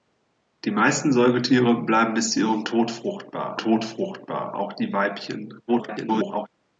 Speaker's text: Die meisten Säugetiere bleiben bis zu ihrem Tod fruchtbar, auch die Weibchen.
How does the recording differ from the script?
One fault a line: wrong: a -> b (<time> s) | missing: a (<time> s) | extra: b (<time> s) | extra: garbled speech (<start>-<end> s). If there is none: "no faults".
extra: Tod fruchtbar (3.6 s)
extra: garbled speech (5.7-6.5 s)